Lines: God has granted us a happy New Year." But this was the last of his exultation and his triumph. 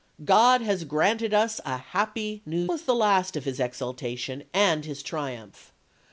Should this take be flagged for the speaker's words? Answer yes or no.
yes